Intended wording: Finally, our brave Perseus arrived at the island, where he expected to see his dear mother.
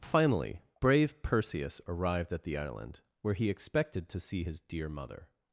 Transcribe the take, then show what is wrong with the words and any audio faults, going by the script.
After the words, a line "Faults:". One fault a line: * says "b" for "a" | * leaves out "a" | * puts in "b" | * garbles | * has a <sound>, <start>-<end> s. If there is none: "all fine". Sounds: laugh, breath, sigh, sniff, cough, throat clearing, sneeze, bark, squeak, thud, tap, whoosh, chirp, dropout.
Finally, brave Perseus arrived at the island, where he expected to see his dear mother.
Faults:
* leaves out "our"